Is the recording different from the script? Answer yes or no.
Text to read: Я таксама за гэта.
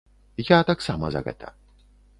no